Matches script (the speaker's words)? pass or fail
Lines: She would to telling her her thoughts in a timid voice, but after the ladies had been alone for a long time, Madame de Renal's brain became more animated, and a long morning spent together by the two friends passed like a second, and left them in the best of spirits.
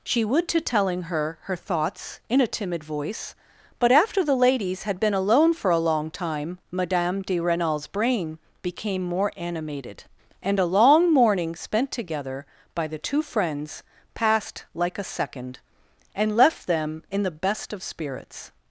pass